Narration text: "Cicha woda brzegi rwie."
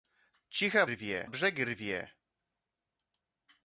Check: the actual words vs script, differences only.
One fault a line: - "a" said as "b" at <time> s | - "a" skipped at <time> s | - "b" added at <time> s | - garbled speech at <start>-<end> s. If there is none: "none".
- "woda" said as "rwie" at 0.9 s